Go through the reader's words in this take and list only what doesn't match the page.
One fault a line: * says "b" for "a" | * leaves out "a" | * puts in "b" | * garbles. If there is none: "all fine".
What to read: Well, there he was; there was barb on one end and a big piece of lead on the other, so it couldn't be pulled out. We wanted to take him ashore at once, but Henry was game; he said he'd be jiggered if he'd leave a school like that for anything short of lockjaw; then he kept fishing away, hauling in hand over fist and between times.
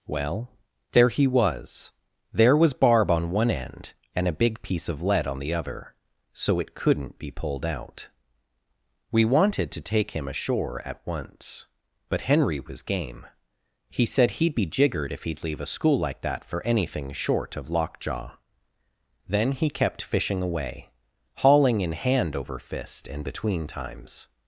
all fine